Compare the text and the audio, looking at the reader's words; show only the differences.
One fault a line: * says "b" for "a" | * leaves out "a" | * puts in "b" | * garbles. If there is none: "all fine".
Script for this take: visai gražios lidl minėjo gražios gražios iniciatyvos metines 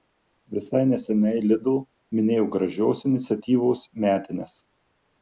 * says "neseniai" for "gražios"
* leaves out "gražios"